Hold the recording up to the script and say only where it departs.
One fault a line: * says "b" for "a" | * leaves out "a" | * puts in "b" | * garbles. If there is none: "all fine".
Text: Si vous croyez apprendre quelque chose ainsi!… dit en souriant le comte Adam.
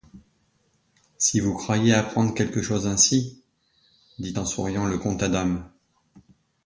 all fine